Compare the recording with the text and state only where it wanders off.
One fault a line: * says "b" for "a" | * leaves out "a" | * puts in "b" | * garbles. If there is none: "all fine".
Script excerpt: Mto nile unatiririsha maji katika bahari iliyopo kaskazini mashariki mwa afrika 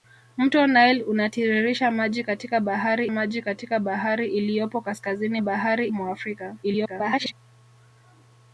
* puts in "maji katika bahari"
* says "bahari" for "mashariki"
* garbles